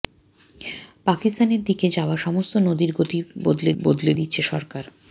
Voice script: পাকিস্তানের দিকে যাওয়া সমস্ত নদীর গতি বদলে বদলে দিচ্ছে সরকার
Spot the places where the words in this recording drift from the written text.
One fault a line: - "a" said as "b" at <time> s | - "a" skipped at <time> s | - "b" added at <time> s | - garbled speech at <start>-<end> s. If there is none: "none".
none